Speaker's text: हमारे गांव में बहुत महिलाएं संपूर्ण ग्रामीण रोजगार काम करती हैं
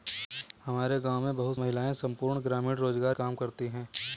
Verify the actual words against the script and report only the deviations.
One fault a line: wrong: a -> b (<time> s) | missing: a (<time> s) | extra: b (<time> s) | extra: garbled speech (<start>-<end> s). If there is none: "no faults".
no faults